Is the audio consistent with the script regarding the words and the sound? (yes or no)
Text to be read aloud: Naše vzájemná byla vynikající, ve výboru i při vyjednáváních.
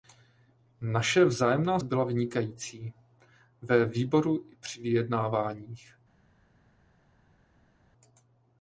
yes